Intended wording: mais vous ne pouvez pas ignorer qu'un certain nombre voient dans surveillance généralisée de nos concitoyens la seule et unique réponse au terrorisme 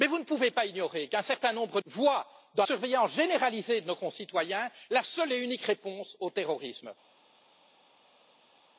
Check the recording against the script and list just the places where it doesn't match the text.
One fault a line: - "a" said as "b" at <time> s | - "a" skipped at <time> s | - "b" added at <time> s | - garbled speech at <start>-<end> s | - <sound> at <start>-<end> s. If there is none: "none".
none